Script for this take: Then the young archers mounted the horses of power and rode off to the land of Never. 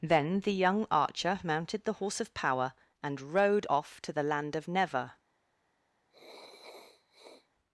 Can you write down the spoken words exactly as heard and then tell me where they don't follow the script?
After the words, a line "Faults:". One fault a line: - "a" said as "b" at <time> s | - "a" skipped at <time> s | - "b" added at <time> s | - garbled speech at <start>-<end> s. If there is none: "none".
Then the young archer mounted the horse of power and rode off to the land of Never.
Faults:
- "archers" said as "archer" at 0.9 s
- "horses" said as "horse" at 1.9 s